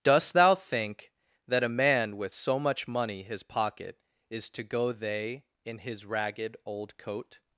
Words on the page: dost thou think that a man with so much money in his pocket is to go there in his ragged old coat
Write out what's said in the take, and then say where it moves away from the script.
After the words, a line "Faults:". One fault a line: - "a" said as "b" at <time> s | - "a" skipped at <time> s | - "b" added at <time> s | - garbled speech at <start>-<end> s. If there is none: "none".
dost thou think that a man with so much money his pocket is to go they in his ragged old coat
Faults:
- "in" skipped at 3.2 s
- "there" said as "they" at 4.9 s